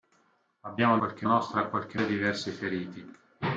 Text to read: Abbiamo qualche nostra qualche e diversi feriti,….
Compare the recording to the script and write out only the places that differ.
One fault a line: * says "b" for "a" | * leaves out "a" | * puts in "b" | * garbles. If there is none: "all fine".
all fine